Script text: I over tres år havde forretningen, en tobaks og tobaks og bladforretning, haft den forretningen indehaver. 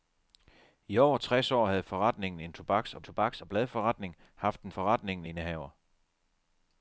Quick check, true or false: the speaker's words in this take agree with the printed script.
true